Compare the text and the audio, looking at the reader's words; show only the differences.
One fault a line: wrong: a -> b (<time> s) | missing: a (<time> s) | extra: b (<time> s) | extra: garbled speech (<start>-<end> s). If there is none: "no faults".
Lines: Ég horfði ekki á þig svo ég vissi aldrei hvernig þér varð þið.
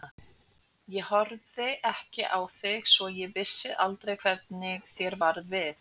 wrong: þið -> við (5.6 s)